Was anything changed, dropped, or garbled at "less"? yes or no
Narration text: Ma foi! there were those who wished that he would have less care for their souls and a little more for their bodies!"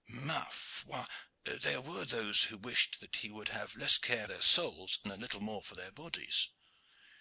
no